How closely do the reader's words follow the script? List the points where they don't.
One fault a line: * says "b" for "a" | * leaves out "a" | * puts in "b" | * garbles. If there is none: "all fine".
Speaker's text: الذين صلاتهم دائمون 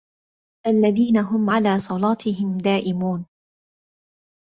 * puts in "هم على"